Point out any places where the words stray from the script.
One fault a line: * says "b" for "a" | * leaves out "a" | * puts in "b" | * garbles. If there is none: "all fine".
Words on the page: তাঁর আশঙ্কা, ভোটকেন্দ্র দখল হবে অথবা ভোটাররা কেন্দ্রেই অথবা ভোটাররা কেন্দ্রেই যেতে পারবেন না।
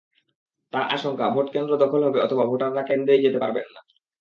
* leaves out "অথবা ভোটাররা কেন্দ্রেই"